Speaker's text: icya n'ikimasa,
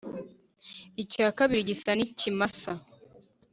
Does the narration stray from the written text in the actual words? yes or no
yes